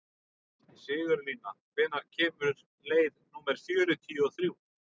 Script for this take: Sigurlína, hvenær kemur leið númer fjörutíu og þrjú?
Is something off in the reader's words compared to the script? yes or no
no